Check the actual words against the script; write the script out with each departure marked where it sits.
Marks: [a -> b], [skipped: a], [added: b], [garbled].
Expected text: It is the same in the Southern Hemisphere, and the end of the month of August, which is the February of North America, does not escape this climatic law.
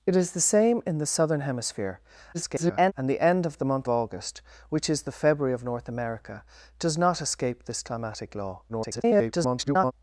It is the same in the Southern Hemisphere, [garbled] and the end of the month [skipped: of] August, which is the February of North America, does not escape this climatic law. [garbled]